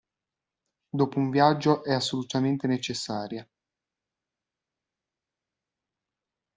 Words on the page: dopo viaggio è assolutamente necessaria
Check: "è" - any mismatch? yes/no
no